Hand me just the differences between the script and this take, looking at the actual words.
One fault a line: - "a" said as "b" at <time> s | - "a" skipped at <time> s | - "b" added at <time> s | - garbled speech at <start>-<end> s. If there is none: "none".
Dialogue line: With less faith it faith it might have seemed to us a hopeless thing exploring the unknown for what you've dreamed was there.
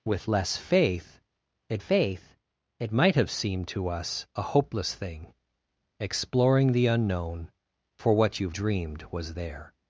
none